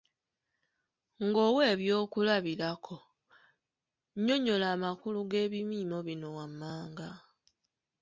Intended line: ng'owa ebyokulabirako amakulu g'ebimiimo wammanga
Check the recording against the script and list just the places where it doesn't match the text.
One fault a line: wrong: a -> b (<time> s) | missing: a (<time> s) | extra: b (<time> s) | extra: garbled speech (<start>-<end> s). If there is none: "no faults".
extra: nnyonnyola (4.2 s)
extra: bino (6.1 s)